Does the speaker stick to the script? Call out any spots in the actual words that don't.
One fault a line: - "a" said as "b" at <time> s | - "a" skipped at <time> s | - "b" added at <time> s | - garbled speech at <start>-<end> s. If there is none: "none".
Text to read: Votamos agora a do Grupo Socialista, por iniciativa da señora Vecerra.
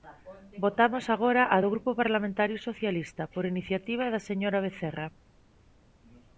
- "Parlamentario" added at 2.0 s